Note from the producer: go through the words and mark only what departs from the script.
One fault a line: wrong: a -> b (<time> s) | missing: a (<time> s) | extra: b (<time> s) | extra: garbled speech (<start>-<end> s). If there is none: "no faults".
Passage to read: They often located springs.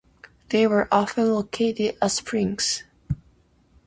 extra: were (0.7 s)
extra: at (2.0 s)